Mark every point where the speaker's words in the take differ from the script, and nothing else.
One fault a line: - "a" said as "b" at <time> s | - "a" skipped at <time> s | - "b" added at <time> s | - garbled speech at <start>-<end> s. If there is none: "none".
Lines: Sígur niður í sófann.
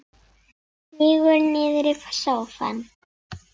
none